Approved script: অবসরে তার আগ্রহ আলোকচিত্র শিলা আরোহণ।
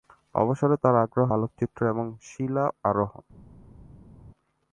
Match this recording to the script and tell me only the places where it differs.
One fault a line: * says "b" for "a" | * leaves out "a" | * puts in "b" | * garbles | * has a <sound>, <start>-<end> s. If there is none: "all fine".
* puts in "এবং"